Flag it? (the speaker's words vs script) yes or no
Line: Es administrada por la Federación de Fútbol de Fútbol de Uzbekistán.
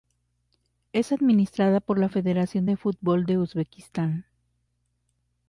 yes